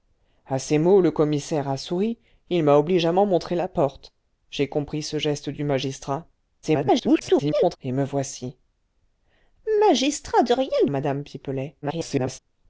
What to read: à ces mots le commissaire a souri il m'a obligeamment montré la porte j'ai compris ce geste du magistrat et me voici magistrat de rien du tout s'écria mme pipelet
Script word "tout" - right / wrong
wrong